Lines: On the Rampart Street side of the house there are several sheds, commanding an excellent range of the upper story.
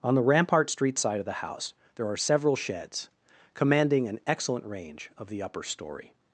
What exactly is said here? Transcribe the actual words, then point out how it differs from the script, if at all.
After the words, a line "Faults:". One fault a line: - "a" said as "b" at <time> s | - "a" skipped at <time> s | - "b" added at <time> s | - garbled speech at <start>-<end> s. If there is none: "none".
On the Rampart Street side of the house there are several sheds, commanding an excellent range of the upper story.
Faults:
none